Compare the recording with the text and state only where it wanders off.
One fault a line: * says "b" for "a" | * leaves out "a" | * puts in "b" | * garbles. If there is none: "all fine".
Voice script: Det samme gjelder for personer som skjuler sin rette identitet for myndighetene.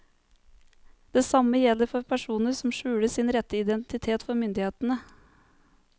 all fine